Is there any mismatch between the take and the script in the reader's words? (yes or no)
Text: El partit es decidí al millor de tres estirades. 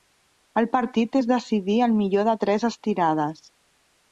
no